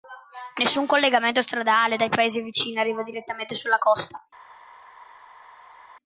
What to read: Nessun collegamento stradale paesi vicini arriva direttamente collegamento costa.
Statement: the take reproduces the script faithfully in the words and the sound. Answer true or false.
false